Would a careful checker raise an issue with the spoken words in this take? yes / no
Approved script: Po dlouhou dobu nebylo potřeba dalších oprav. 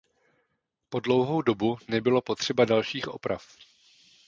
no